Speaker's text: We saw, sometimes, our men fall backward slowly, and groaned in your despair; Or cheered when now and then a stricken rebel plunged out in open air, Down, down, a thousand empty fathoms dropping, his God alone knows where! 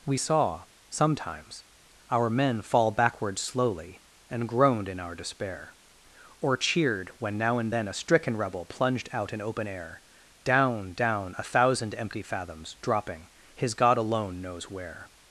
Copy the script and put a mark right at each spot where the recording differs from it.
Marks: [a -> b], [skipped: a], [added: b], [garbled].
We saw, sometimes, our men fall backward slowly, and groaned in [your -> our] despair; Or cheered when now and then a stricken rebel plunged out in open air, Down, down, a thousand empty fathoms dropping, his God alone knows where!